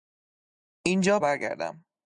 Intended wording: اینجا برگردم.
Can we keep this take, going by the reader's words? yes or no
yes